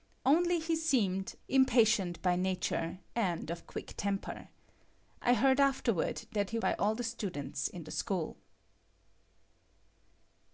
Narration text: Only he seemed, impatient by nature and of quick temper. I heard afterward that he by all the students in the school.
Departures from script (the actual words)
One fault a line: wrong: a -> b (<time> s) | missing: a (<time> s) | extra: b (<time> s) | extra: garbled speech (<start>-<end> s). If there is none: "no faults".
no faults